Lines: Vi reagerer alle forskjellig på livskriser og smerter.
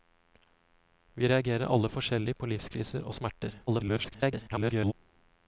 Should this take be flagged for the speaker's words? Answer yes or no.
yes